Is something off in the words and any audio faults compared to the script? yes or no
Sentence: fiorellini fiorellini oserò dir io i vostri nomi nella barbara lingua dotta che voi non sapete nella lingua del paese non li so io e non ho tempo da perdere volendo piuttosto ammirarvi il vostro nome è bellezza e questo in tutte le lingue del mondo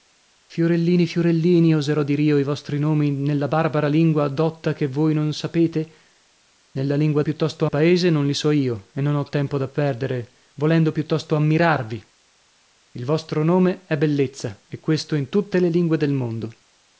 yes